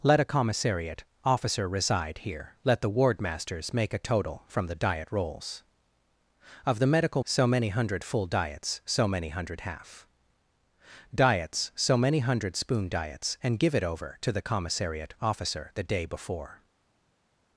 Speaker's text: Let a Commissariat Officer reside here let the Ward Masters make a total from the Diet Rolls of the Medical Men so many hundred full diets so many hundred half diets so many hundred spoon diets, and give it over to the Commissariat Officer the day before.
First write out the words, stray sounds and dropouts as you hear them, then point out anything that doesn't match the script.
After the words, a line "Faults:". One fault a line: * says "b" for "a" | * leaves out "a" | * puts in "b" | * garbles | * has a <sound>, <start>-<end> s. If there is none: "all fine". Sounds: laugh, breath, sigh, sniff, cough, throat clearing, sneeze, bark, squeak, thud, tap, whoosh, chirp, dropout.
Let a Commissariat Officer reside here let the Ward Masters make a total from the Diet Rolls of the Medical So many hundred full diets so many hundred half diets so many hundred spoon diets, and give it over to the Commissariat Officer the day before.
Faults:
* leaves out "Men"